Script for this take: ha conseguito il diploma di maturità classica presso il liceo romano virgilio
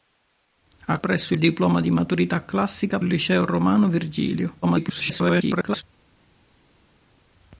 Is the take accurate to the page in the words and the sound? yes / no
no